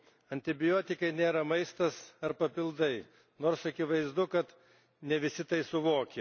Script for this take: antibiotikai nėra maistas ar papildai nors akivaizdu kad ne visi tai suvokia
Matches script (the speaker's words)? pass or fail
pass